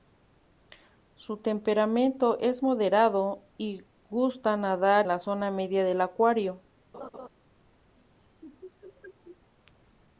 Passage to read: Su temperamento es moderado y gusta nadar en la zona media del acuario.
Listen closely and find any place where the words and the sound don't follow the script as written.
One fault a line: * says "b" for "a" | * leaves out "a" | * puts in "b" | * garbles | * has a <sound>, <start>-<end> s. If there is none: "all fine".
* leaves out "en"
* has a laugh, 6.9-7.3 s
* has a laugh, 8.0-9.5 s